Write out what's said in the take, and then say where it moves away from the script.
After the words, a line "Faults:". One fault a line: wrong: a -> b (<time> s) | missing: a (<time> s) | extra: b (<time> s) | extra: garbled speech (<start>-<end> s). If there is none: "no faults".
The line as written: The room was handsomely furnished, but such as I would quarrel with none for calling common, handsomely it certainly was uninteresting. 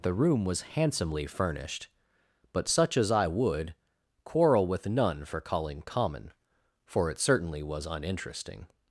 The room was handsomely furnished, but such as I would quarrel with none for calling common, for it certainly was uninteresting.
Faults:
wrong: handsomely -> for (6.8 s)